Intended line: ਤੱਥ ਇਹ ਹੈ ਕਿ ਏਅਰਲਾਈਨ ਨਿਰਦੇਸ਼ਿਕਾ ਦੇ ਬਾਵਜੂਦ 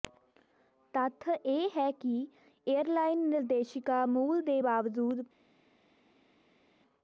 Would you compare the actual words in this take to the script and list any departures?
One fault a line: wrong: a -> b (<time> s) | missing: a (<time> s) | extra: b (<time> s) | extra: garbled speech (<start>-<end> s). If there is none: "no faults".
extra: ਮੂਲ (4.1 s)